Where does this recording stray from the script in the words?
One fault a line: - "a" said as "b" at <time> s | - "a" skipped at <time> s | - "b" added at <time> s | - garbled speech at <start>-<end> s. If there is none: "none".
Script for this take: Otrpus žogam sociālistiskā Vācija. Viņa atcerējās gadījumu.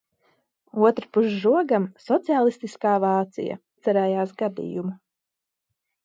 - "Viņa" skipped at 3.6 s